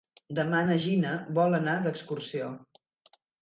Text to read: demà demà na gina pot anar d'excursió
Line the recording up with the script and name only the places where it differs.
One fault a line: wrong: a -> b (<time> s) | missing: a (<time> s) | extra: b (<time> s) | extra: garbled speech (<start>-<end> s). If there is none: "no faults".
missing: demà (0.6 s)
wrong: pot -> vol (1.4 s)